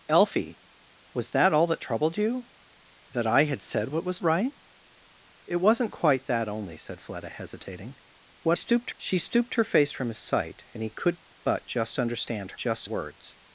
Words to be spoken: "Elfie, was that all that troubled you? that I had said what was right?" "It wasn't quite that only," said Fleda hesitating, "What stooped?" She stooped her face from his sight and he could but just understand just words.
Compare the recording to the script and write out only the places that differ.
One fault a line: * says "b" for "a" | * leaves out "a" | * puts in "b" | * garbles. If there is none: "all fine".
all fine